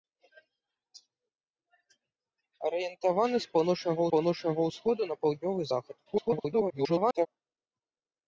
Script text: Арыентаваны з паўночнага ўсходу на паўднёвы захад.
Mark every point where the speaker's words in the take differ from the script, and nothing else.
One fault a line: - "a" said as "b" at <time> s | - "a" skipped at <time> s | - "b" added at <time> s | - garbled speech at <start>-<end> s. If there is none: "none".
- "паўночнага" added at 4.1 s
- garbled speech at 6.1-7.3 s